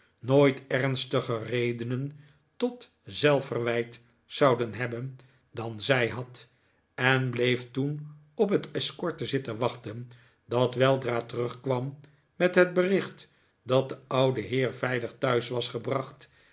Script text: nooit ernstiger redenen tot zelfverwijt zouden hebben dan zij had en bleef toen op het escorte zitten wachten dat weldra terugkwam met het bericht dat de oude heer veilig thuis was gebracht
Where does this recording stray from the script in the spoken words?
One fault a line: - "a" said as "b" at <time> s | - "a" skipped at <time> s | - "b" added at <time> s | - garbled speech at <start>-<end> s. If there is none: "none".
none